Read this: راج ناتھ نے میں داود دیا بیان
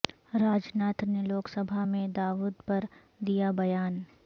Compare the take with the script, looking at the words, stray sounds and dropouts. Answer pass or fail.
fail